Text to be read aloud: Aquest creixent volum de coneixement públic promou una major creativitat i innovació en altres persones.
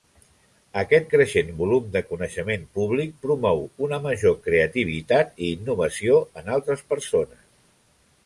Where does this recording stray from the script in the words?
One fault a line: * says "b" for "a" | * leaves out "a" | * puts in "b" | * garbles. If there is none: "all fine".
all fine